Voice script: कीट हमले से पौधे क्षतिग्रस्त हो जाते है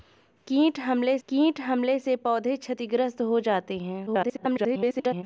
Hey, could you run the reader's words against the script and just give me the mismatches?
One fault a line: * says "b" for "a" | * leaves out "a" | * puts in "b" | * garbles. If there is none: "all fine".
* puts in "कीट हमले"
* garbles